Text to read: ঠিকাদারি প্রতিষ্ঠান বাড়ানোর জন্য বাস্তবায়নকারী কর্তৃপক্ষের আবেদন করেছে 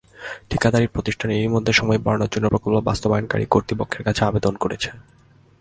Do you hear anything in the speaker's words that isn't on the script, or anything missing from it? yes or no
yes